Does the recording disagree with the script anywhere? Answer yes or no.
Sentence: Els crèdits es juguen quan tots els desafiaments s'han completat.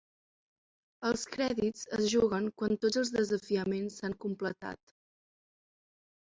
no